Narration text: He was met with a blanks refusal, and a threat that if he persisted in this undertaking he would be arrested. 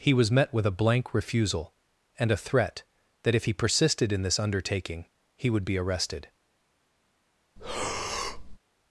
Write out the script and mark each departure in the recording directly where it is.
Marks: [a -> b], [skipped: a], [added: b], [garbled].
He was met with a [blanks -> blank] refusal, and a threat that if he persisted in this undertaking he would be arrested.